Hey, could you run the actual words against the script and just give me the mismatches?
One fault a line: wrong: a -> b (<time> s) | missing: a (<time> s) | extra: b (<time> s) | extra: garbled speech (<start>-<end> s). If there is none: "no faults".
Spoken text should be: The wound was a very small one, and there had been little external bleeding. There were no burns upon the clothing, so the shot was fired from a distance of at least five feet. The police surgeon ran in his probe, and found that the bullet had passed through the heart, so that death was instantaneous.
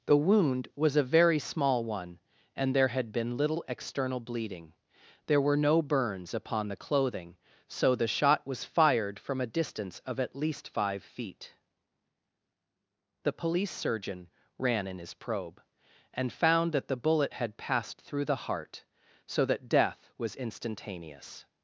no faults